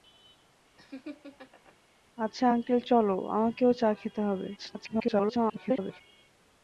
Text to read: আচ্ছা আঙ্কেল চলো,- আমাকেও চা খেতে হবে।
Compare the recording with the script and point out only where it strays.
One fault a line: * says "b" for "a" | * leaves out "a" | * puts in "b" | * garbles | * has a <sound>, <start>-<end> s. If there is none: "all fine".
* has a laugh, 0.8-1.8 s
* garbles